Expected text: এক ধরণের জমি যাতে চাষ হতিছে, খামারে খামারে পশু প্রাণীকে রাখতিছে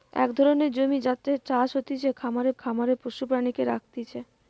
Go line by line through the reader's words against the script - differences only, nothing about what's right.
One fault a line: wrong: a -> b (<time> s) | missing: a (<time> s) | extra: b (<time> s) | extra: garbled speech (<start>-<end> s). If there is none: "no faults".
no faults